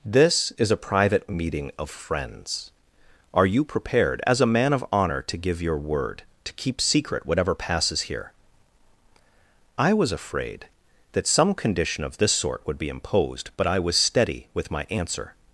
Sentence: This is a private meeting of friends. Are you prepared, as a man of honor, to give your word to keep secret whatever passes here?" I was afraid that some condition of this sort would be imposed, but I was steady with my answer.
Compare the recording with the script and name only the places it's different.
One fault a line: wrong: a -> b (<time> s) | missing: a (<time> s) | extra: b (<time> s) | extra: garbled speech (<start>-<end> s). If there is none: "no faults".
no faults